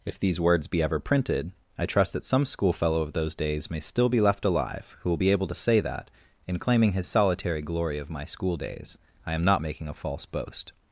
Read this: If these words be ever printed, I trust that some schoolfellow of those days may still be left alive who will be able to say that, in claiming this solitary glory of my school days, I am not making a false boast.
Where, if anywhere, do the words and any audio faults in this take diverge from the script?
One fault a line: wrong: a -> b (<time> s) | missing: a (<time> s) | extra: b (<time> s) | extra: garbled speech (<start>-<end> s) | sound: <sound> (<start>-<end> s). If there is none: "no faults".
wrong: this -> his (6.9 s)